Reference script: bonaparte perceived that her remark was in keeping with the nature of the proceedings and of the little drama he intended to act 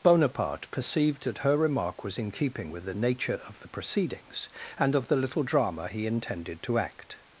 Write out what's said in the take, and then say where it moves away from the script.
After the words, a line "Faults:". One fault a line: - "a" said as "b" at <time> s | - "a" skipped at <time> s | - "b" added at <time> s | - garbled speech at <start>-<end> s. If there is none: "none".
bonaparte perceived that her remark was in keeping with the nature of the proceedings and of the little drama he intended to act
Faults:
none